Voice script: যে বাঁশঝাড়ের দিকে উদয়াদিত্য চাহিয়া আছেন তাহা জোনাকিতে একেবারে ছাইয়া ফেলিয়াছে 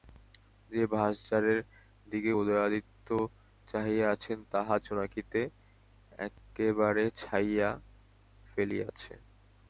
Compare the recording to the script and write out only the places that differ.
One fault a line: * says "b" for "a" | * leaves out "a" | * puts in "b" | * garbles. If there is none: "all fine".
all fine